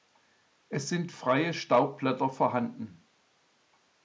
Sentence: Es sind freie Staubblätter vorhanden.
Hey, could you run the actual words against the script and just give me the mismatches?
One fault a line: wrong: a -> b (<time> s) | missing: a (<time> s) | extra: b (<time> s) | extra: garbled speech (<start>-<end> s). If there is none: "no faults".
no faults